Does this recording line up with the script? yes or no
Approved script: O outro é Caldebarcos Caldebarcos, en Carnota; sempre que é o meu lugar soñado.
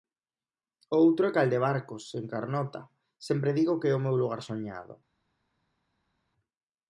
no